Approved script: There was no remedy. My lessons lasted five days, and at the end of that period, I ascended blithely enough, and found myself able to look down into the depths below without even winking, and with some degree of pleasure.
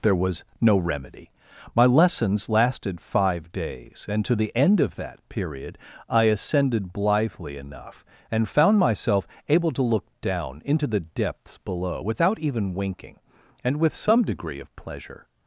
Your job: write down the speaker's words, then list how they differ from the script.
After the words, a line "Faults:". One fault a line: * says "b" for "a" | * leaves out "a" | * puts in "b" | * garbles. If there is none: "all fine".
There was no remedy. My lessons lasted five days, and to the end of that period, I ascended blithely enough, and found myself able to look down into the depths below without even winking, and with some degree of pleasure.
Faults:
* says "to" for "at"